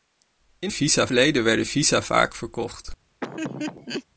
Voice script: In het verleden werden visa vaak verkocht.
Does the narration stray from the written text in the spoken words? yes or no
yes